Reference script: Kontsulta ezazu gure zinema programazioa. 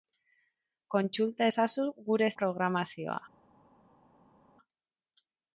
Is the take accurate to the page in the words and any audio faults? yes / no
no